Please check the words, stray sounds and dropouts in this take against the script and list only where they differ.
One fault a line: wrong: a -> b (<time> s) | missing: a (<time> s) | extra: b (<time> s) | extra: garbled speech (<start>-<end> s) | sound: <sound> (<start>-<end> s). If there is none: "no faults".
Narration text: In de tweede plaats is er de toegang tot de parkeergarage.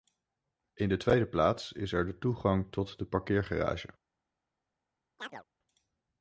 sound: chirp (5.2-5.4 s)